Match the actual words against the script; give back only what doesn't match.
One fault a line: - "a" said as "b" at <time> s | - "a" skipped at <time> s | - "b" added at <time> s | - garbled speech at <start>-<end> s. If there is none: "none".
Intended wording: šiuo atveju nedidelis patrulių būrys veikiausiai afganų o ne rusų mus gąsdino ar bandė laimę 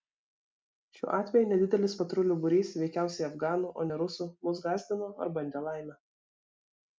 none